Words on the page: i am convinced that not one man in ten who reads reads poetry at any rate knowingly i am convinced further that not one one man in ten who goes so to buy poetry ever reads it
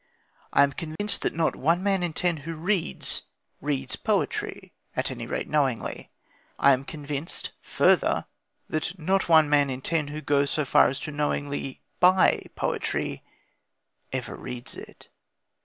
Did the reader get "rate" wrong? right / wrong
right